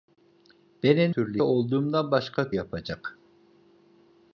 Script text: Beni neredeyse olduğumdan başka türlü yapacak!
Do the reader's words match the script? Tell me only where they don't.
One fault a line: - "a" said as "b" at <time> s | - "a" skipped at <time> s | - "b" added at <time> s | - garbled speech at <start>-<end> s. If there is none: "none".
- "neredeyse" said as "türlü" at 1.1 s
- "türlü" skipped at 2.5 s